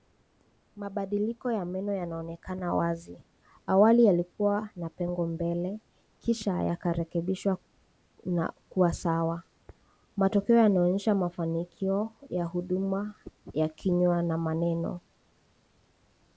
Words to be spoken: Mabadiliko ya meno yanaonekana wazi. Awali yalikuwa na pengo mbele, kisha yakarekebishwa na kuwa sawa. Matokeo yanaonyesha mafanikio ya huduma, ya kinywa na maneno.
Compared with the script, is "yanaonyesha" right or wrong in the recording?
right